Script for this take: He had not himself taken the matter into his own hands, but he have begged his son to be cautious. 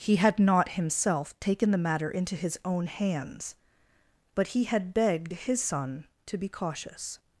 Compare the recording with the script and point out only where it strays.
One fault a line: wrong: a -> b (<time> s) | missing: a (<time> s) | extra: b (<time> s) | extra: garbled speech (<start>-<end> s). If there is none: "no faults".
wrong: have -> had (4.6 s)